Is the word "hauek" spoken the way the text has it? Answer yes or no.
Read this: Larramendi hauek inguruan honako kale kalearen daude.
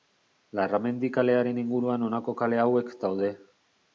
no